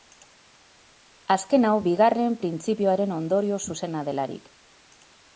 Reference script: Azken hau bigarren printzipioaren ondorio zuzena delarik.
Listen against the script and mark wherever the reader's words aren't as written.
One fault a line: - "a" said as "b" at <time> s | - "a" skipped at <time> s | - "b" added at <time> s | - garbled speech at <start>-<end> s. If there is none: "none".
none